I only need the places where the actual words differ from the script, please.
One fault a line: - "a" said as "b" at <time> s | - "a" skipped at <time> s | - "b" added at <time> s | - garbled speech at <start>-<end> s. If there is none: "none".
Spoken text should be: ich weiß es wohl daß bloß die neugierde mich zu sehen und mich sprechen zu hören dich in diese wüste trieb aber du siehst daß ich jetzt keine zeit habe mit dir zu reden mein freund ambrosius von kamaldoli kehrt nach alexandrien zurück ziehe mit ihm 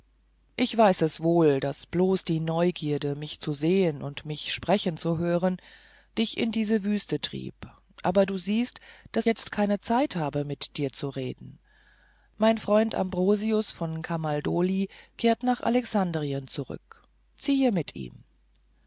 - "ich" skipped at 9.3 s